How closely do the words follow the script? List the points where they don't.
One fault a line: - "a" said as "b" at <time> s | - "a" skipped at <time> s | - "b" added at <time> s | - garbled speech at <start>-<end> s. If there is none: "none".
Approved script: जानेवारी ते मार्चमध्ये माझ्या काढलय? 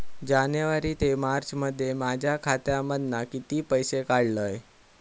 - "खात्यामधना किती पैसे" added at 2.4 s